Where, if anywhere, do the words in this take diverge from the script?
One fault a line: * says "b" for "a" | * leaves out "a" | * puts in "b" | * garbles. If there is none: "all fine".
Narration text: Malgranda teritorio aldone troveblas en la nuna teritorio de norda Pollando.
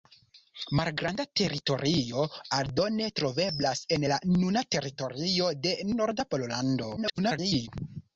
* garbles